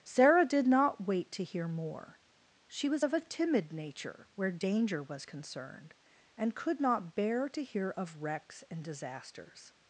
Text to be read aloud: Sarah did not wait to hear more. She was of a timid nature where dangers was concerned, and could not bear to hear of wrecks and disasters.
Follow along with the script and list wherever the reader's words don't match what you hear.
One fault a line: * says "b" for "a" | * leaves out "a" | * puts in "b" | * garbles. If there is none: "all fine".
* says "danger" for "dangers"